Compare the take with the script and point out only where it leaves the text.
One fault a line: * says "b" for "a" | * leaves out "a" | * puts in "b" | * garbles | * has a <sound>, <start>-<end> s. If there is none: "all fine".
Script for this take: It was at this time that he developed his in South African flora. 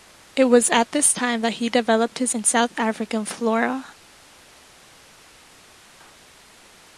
all fine